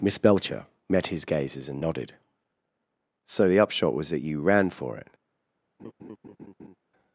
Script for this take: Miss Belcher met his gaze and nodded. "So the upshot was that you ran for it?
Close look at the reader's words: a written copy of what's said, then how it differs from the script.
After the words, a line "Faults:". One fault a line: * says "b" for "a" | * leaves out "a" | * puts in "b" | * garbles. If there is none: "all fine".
Miss Belcher met his gazes and nodded. "So the upshot was that you ran for it?
Faults:
* says "gazes" for "gaze"